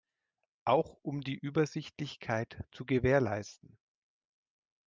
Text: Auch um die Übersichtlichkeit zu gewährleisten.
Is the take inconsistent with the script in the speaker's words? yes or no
no